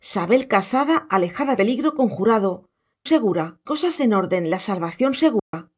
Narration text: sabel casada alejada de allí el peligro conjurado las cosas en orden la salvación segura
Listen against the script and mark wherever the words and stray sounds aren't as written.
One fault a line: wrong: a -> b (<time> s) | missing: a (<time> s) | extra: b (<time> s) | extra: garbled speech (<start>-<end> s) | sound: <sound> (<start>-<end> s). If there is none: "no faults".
missing: de allí el (1.6 s)
wrong: las -> segura (3.0 s)
sound: dropout (5.4-5.5 s)